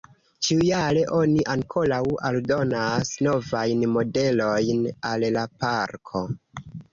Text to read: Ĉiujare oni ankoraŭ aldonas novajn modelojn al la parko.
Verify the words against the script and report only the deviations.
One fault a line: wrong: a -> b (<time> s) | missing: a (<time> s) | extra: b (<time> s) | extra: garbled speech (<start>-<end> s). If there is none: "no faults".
no faults